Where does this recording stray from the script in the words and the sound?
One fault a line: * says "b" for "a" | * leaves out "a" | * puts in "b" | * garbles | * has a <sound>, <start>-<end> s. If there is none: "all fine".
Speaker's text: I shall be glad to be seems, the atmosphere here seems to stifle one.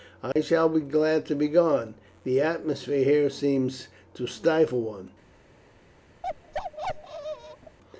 * has a dropout, 0.3-0.4 s
* says "gone" for "seems"
* has a bark, 6.2-7.8 s